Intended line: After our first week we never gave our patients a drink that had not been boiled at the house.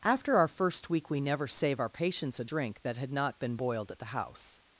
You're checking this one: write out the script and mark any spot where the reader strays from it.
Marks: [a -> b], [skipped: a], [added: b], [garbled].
After our first week we never [gave -> save] our patients a drink that had not been boiled at the house.